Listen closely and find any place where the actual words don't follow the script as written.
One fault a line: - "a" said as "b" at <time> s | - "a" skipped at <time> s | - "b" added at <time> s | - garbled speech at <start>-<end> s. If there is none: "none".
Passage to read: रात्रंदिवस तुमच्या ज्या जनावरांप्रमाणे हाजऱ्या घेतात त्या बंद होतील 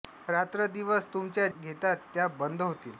- "ज्या जनावरांप्रमाणे हाजऱ्या" skipped at 1.5 s